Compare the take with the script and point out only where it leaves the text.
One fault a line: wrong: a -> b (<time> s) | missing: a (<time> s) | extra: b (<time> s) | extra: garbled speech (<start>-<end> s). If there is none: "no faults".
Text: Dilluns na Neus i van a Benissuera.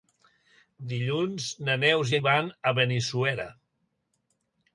no faults